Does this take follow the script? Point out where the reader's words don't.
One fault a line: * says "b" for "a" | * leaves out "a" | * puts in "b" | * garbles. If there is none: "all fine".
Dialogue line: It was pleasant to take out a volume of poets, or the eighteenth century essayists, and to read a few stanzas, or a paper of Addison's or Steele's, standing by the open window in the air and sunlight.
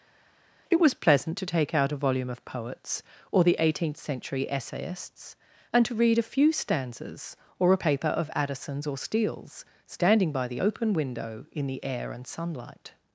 all fine